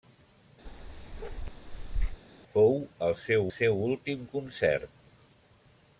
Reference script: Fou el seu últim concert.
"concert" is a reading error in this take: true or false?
false